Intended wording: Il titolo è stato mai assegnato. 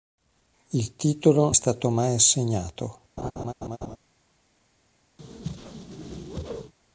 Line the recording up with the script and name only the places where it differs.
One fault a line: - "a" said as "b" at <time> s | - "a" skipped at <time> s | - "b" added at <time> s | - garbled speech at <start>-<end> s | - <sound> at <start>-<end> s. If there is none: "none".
- laugh at 3.2-4.0 s
- whoosh at 5.2-6.7 s